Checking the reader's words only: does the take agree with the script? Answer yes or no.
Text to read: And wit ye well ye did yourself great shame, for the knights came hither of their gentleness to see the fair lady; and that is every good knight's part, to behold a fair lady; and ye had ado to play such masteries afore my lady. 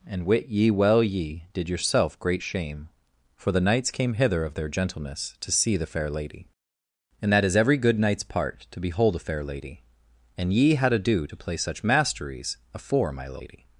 yes